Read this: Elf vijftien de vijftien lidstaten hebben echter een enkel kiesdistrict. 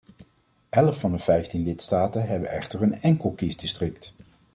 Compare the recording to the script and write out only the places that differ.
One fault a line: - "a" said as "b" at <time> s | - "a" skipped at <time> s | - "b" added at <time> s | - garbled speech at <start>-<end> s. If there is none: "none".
- "vijftien" said as "van" at 1.0 s